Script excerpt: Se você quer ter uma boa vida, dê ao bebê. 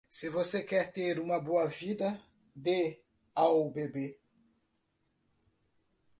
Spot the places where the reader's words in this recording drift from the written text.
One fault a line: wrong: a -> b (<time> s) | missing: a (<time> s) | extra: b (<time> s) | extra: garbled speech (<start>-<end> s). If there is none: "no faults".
no faults